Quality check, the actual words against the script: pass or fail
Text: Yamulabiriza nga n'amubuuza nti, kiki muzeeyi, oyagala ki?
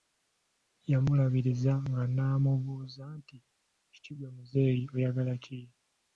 fail